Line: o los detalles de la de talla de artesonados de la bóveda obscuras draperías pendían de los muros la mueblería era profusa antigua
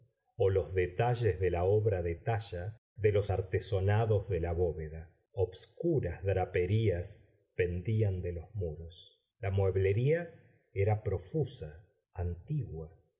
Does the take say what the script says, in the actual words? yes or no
no